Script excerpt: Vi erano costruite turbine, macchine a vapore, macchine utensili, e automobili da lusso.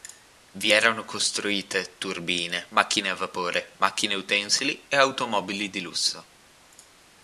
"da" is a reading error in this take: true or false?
true